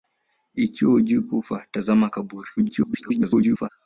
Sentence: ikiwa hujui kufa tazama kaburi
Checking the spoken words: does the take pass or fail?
fail